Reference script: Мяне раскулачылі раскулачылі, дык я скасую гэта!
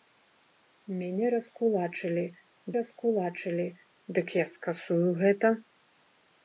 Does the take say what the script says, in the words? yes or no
yes